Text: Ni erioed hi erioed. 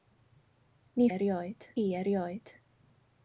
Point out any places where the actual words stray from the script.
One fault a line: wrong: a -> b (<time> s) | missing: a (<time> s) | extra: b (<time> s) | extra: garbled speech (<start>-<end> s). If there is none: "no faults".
no faults